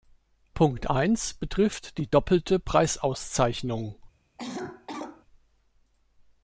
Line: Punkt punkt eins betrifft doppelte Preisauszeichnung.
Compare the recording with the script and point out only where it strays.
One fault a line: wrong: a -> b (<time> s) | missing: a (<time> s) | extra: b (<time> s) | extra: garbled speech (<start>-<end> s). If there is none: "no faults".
missing: punkt (0.9 s)
extra: die (2.0 s)